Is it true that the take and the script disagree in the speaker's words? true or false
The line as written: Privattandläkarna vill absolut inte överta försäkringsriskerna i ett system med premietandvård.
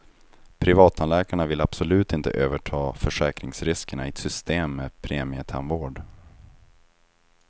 false